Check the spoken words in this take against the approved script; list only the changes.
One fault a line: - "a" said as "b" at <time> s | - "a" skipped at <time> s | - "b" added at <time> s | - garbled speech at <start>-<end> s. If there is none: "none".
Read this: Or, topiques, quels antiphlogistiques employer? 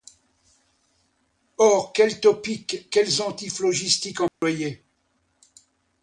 - "quels" added at 1.9 s